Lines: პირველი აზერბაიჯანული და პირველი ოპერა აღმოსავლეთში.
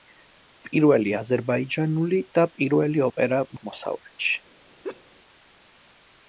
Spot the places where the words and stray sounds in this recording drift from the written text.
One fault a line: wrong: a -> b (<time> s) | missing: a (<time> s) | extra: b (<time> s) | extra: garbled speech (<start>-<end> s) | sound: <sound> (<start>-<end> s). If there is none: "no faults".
sound: laugh (4.8-5.0 s)